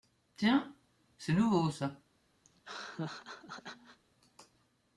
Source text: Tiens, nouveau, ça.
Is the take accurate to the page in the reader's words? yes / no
no